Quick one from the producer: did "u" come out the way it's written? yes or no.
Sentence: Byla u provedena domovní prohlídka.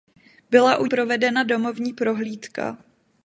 yes